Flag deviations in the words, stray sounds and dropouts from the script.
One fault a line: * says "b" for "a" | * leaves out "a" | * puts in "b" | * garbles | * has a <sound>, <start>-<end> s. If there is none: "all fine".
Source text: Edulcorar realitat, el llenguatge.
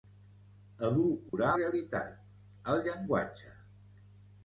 * has a dropout, 1.3-1.3 s